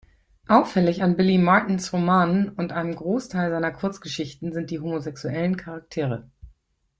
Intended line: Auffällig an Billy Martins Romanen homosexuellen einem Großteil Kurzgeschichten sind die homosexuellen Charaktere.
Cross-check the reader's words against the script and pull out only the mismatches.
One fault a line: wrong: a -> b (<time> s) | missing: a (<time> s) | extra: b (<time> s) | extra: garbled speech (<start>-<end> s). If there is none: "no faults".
wrong: homosexuellen -> und (2.5 s)
extra: seiner (3.5 s)